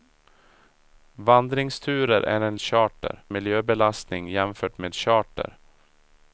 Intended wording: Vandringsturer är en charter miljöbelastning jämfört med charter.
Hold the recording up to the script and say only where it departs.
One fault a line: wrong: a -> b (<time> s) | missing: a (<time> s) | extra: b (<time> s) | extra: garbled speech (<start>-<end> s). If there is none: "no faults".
no faults